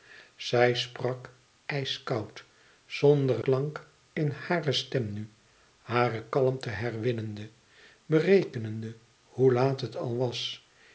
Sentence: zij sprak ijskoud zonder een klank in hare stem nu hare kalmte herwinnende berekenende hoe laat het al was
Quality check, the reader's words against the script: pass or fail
fail